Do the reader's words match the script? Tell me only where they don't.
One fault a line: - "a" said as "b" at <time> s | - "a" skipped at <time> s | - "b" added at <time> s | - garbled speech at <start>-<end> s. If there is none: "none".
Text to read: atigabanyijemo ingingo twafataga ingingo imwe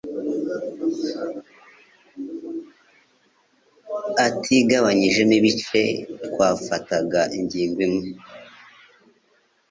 - "ingingo" said as "ibice" at 5.4 s